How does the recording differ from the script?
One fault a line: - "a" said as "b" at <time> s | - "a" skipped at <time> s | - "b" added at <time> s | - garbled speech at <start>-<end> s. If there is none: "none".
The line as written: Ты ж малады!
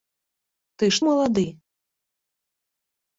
none